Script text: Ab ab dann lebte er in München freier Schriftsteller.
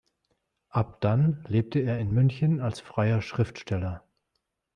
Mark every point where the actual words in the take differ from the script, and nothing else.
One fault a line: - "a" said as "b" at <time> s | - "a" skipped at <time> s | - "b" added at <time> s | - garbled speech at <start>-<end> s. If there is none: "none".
- "ab" skipped at 1.0 s
- "als" added at 2.6 s